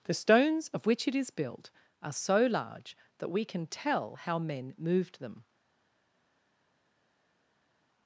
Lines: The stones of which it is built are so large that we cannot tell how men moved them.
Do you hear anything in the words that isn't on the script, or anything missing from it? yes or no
yes